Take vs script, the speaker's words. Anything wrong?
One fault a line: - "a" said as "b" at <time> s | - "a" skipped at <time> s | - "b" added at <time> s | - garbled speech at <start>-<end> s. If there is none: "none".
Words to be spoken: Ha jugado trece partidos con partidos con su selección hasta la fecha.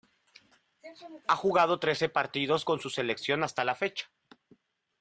- "partidos con" skipped at 2.8 s